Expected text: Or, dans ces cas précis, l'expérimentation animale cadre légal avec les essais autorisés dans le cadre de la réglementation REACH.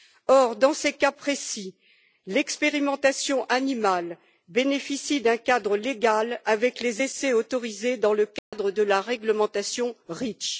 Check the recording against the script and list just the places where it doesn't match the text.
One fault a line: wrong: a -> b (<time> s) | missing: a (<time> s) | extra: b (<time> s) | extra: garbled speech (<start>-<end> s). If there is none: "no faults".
extra: bénéficie d'un (4.5 s)